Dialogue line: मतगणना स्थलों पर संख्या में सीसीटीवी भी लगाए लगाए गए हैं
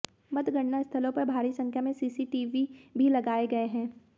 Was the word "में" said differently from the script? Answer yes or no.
no